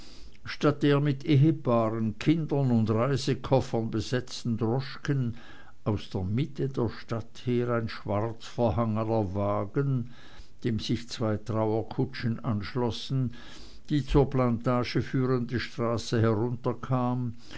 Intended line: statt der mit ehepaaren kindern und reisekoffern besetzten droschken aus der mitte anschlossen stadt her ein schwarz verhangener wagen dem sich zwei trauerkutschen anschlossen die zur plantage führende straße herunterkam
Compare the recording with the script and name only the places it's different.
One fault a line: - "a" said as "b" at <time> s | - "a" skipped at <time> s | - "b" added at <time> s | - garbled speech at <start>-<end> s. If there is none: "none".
- "anschlossen" said as "der" at 6.7 s